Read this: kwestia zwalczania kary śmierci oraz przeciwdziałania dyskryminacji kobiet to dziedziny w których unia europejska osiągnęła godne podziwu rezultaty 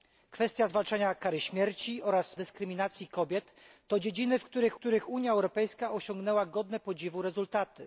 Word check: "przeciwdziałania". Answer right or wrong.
wrong